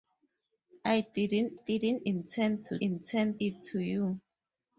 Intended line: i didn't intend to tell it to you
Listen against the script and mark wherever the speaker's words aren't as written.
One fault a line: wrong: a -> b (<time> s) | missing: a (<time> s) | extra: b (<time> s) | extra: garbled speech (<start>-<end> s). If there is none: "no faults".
extra: didn't (1.5 s)
wrong: tell -> intend (2.8 s)